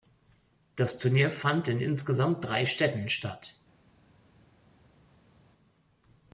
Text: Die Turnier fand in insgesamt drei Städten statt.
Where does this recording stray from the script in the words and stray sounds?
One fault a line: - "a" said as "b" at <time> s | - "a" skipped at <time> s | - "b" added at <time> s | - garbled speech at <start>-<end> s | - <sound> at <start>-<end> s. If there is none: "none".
- "Die" said as "Das" at 0.8 s